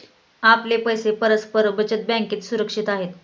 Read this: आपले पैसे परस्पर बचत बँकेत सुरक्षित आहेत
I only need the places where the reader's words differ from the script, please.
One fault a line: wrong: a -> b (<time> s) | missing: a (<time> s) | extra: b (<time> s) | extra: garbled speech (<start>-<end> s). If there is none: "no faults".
no faults